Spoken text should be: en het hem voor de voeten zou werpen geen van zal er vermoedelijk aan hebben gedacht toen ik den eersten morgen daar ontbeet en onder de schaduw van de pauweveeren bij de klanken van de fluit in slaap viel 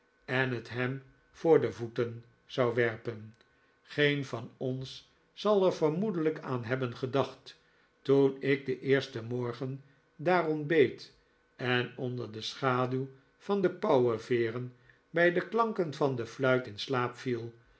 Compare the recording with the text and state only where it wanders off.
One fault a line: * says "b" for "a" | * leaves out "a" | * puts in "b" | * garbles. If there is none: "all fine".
* puts in "ons"